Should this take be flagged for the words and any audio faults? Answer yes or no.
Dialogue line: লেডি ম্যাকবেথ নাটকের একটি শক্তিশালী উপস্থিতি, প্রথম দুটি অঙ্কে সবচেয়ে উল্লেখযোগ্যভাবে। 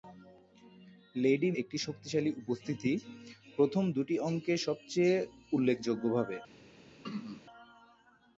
yes